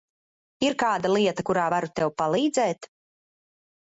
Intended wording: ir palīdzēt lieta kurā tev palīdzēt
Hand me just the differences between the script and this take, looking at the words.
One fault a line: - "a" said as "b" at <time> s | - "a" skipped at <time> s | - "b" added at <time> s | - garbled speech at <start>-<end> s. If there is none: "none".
- "palīdzēt" said as "kāda" at 0.8 s
- "varu" added at 1.7 s